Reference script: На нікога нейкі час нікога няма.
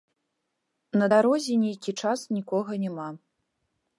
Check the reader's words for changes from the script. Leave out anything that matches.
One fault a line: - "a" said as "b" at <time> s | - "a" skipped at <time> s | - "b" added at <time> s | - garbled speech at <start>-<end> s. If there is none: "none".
- "нікога" said as "дарозе" at 1.1 s